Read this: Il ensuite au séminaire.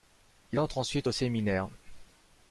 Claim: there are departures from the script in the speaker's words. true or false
true